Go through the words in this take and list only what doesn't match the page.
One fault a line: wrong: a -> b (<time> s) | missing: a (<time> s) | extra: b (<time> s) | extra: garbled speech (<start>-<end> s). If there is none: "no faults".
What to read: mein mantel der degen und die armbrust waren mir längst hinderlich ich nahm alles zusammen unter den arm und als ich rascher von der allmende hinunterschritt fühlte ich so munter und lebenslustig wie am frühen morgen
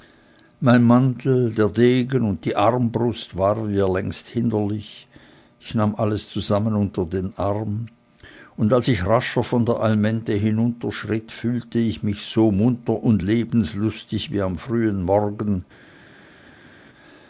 extra: mich (12.0 s)